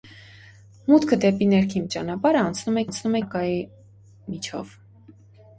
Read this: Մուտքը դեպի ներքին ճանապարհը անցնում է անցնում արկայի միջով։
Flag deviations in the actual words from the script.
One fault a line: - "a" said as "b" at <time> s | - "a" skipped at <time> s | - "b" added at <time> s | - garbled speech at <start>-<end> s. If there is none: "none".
none